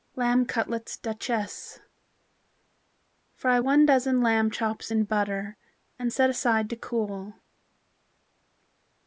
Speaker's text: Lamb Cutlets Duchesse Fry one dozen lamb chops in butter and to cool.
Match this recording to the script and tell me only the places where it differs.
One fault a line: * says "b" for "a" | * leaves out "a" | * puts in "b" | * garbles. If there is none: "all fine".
* puts in "set aside"